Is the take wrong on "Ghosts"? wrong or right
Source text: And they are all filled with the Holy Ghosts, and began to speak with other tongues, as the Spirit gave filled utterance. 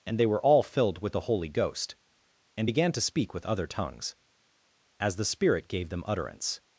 wrong